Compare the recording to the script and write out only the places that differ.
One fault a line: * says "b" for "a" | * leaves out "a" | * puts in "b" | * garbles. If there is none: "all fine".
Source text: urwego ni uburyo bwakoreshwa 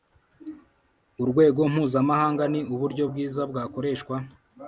* puts in "mpuzamahanga"
* puts in "bwiza"